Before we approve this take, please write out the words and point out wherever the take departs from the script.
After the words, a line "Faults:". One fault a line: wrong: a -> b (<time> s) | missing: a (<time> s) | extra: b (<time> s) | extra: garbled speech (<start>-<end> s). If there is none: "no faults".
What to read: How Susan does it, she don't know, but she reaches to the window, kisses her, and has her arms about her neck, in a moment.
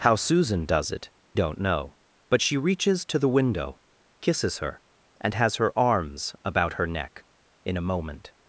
How Susan does it, don't know, but she reaches to the window, kisses her, and has her arms about her neck, in a moment.
Faults:
missing: she (1.1 s)